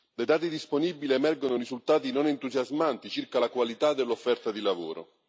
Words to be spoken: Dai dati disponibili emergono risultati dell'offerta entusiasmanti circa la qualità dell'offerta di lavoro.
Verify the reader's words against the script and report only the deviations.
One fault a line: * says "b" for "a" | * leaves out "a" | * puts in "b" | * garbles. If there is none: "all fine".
* says "non" for "dell'offerta"